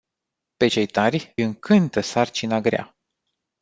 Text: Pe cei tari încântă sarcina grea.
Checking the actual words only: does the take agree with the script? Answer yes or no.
yes